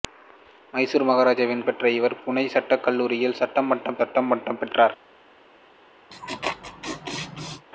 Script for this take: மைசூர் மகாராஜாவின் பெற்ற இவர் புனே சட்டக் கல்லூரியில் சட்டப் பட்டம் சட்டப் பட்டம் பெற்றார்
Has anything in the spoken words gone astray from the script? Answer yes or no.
no